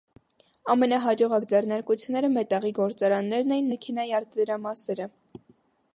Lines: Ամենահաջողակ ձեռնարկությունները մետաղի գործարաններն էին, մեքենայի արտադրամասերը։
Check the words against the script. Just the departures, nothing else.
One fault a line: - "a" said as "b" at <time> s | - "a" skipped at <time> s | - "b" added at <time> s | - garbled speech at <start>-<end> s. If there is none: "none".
none